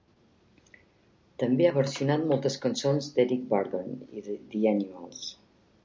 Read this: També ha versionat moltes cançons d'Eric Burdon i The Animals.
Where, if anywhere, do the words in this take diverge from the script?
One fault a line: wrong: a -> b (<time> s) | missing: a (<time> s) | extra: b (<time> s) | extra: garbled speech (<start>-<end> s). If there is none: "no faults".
no faults